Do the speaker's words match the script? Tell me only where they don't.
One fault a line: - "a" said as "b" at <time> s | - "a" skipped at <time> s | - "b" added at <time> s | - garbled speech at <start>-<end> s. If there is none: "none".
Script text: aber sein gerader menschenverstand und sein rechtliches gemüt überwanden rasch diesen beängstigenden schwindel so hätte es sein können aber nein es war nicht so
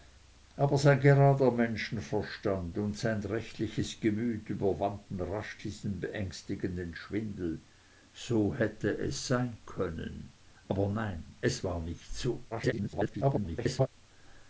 - garbled speech at 12.5-13.9 s